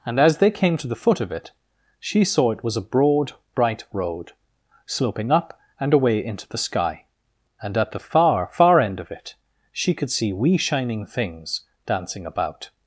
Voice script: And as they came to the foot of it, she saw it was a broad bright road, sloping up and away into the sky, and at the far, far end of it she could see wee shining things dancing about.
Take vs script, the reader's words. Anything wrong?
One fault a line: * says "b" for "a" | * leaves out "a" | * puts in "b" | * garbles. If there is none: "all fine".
all fine